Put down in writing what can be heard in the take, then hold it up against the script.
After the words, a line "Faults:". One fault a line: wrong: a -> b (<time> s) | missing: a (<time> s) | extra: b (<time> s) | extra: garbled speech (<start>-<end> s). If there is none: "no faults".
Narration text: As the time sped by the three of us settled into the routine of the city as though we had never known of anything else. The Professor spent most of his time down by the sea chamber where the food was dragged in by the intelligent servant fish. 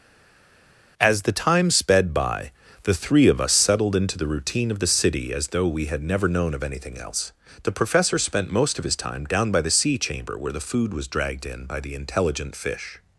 As the time sped by the three of us settled into the routine of the city as though we had never known of anything else. The Professor spent most of his time down by the sea chamber where the food was dragged in by the intelligent fish.
Faults:
missing: servant (12.6 s)